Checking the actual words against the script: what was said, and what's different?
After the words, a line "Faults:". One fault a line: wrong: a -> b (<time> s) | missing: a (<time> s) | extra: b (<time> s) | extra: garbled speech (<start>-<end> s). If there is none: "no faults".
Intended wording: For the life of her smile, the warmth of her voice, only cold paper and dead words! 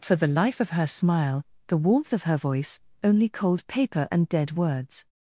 For the life of her smile, the warmth of her voice, only cold paper and dead words!
Faults:
no faults